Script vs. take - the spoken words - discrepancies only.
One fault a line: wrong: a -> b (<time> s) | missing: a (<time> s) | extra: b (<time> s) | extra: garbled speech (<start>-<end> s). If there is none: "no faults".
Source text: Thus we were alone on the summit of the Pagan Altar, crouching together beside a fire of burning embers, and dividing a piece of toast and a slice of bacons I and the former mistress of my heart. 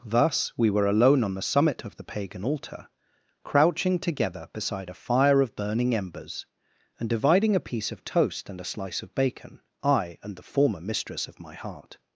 wrong: bacons -> bacon (9.2 s)